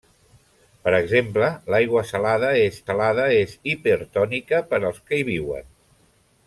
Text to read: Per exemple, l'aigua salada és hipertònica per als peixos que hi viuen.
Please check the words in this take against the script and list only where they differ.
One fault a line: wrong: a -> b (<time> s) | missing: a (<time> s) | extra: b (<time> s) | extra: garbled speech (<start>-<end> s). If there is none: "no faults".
extra: salada és (2.9 s)
missing: peixos (5.0 s)